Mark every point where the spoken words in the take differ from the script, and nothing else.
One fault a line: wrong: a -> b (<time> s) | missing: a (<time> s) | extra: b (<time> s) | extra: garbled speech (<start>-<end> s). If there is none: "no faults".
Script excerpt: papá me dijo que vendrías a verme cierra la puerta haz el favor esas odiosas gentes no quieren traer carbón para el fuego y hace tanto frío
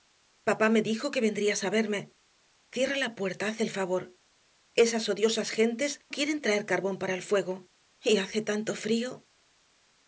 missing: no (6.0 s)